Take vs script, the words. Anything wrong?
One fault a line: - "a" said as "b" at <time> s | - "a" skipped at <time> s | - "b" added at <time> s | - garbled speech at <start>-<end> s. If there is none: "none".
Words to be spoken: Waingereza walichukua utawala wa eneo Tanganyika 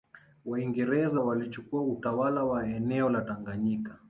- "la" added at 3.1 s